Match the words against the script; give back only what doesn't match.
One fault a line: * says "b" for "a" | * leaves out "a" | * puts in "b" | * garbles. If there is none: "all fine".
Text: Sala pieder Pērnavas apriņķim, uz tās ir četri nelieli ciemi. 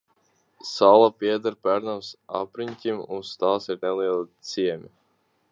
* leaves out "četri"